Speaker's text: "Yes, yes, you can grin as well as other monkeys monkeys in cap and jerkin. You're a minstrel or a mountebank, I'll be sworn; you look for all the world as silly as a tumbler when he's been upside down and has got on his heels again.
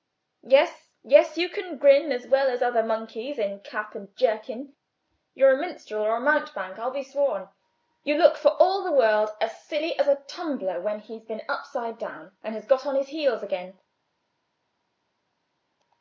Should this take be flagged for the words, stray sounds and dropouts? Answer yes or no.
yes